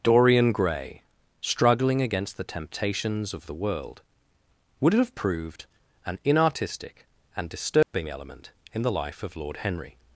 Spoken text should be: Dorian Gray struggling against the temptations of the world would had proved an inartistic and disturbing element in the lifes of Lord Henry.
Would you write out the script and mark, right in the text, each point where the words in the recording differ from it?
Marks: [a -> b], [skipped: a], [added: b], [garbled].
Dorian Gray struggling against the temptations of the world would [had -> have] proved an inartistic and disturbing element in the [lifes -> life] of Lord Henry.